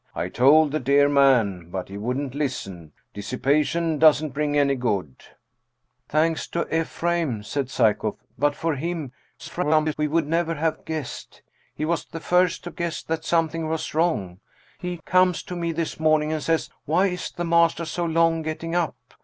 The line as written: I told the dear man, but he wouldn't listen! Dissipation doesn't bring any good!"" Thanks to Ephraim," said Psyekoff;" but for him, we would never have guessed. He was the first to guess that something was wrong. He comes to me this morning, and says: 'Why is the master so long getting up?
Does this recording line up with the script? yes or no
no